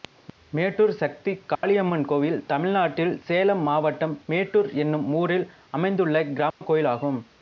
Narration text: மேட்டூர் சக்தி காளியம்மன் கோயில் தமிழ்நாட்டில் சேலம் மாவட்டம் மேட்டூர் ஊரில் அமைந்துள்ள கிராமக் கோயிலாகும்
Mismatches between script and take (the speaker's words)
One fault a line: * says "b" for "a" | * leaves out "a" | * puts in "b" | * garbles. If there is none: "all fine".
* puts in "என்னும்"